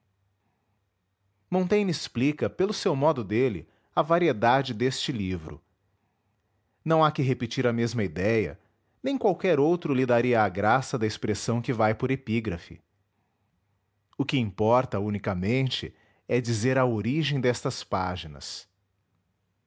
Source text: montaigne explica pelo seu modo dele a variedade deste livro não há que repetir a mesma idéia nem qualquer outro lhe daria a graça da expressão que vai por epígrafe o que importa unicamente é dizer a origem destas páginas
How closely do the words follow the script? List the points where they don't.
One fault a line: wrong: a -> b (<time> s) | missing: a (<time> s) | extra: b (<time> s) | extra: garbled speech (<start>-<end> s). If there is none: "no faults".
no faults